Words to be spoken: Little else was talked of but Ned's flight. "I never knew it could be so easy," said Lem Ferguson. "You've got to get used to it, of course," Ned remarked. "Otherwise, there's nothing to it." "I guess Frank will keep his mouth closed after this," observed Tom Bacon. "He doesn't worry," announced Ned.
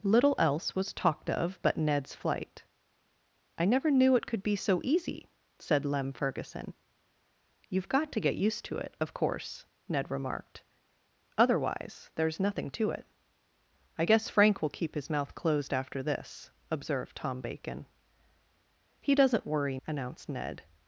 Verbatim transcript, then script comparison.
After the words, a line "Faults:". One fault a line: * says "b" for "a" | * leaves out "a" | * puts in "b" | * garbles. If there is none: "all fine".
Little else was talked of but Ned's flight. "I never knew it could be so easy," said Lem Ferguson. "You've got to get used to it, of course," Ned remarked. "Otherwise, there's nothing to it." "I guess Frank will keep his mouth closed after this," observed Tom Bacon. "He doesn't worry," announced Ned.
Faults:
all fine